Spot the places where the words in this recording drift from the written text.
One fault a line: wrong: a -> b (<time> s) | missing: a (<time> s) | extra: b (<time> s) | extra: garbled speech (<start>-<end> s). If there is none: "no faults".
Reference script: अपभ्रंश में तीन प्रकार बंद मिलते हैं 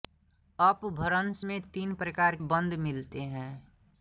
no faults